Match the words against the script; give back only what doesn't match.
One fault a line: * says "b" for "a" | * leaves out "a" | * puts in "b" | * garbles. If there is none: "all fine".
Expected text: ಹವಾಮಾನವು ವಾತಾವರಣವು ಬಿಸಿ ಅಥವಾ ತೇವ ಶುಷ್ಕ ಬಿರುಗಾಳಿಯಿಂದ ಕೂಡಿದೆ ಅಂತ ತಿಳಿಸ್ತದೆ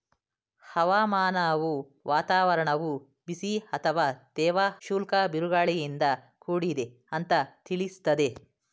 all fine